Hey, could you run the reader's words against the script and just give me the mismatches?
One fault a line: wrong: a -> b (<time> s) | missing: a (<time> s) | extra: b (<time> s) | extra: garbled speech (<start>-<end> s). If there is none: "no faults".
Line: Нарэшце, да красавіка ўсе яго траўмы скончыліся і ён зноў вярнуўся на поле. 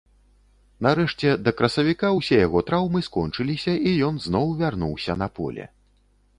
no faults